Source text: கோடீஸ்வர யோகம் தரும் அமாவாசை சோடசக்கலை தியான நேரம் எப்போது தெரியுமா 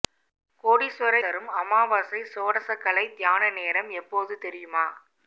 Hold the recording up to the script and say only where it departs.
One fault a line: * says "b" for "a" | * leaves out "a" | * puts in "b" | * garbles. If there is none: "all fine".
* leaves out "யோகம்"